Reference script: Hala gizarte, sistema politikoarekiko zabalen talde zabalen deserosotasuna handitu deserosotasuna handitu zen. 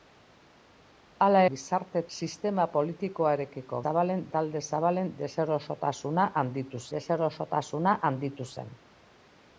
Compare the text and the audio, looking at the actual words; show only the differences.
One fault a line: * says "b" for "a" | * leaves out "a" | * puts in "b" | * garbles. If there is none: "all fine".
all fine